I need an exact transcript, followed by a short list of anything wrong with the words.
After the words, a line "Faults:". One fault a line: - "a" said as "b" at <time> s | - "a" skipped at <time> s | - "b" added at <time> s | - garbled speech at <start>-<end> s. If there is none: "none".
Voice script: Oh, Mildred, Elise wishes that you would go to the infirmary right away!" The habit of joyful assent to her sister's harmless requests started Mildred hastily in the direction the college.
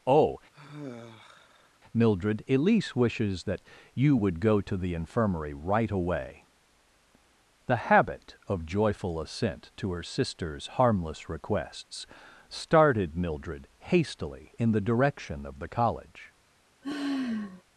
Oh, Mildred, Elise wishes that you would go to the infirmary right away!" The habit of joyful assent to her sister's harmless requests started Mildred hastily in the direction of the college.
Faults:
- "of" added at 15.5 s